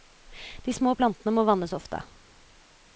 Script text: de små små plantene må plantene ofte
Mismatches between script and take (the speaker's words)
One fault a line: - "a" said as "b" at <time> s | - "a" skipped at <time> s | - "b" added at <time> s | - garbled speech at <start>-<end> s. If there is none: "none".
- "små" skipped at 0.9 s
- "plantene" said as "vannes" at 1.5 s